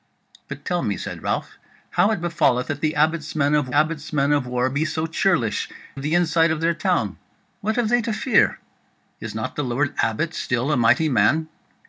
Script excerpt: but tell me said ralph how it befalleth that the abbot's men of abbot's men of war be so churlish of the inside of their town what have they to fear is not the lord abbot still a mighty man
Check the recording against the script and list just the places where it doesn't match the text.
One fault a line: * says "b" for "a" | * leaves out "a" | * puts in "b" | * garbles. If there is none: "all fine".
all fine